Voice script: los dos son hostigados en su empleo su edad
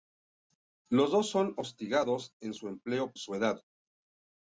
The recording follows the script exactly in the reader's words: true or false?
true